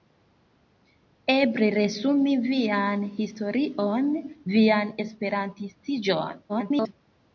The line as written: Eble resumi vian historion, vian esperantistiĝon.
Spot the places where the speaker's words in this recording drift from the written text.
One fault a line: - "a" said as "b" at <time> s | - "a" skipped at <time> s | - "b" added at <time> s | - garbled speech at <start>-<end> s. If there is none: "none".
- garbled speech at 6.5-6.9 s